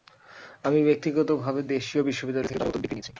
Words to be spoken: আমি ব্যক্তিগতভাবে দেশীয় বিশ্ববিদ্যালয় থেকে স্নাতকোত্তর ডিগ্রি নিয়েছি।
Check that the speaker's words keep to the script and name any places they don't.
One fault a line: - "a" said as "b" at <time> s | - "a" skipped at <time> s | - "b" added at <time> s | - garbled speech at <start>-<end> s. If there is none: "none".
none